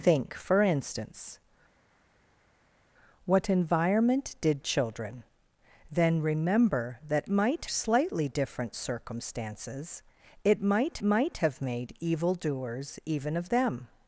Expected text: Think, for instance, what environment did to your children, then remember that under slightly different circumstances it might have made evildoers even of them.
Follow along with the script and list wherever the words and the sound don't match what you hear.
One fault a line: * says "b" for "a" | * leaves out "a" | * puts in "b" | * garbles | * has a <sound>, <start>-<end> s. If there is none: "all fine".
* leaves out "to your"
* says "might" for "under"
* puts in "might"